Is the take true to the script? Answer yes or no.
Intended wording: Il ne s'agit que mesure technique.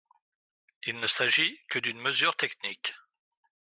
no